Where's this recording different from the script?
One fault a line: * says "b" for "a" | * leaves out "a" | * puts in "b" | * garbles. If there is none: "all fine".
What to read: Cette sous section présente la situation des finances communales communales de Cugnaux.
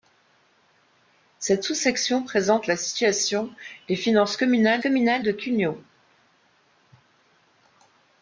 all fine